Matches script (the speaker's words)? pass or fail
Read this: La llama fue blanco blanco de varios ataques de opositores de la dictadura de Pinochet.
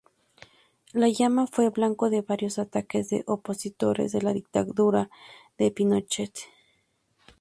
fail